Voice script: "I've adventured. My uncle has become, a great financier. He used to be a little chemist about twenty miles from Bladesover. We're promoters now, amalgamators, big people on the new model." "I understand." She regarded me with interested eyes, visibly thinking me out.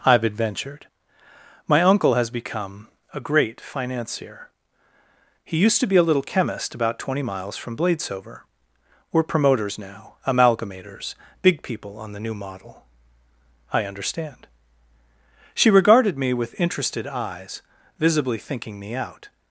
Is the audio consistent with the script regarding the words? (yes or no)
yes